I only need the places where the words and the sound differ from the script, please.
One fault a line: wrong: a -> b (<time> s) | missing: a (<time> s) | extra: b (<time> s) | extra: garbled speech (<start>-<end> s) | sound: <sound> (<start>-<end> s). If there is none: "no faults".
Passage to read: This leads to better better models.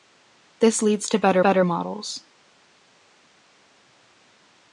no faults